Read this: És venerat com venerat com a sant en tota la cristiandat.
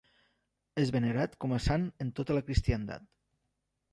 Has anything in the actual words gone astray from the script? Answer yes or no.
yes